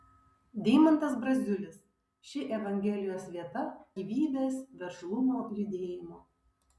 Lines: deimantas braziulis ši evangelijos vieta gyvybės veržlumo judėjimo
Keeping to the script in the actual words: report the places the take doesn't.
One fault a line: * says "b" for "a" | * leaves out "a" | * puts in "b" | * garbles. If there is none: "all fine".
all fine